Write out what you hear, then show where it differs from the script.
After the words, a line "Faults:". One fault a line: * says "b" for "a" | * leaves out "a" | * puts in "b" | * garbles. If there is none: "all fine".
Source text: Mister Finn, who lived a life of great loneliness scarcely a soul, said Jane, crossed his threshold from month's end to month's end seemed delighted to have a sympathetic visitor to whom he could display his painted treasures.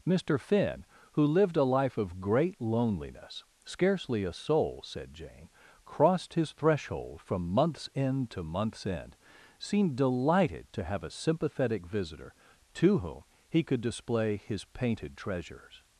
Mister Finn, who lived a life of great loneliness scarcely a soul, said Jane, crossed his threshold from month's end to month's end seemed delighted to have a sympathetic visitor to whom he could display his painted treasures.
Faults:
all fine